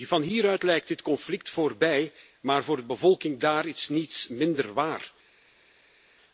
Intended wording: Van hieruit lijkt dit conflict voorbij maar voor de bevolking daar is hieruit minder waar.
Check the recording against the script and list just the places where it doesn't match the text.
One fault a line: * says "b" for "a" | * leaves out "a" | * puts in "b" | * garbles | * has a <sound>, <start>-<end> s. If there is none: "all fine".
* says "niets" for "hieruit"